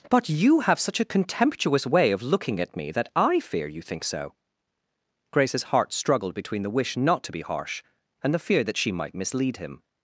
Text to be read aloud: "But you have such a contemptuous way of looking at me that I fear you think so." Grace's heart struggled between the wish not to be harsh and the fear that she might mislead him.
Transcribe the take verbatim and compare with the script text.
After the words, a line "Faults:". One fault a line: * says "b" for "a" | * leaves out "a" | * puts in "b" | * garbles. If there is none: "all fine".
"But you have such a contemptuous way of looking at me that I fear you think so." Grace's heart struggled between the wish not to be harsh and the fear that she might mislead him.
Faults:
all fine